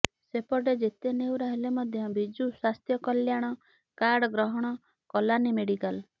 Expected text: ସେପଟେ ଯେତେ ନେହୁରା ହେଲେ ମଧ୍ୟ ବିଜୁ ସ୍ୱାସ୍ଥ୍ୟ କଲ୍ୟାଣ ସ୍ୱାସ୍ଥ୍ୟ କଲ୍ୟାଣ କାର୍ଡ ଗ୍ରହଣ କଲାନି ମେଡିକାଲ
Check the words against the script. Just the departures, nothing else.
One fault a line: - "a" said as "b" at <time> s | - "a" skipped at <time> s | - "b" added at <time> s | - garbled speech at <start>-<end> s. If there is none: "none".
- "ସ୍ୱାସ୍ଥ୍ୟ କଲ୍ୟାଣ" skipped at 3.5 s